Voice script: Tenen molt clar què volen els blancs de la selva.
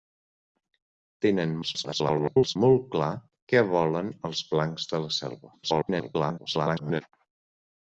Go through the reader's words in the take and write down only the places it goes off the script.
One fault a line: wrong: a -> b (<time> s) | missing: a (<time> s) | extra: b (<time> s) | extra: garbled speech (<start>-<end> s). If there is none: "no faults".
extra: garbled speech (1.6-2.6 s)
extra: garbled speech (5.6-7.0 s)